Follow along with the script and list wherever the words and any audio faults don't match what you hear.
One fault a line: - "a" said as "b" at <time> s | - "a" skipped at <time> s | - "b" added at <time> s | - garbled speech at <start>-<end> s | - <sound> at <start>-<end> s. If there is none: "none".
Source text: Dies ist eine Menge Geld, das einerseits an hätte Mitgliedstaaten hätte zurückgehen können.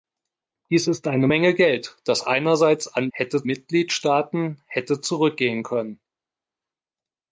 none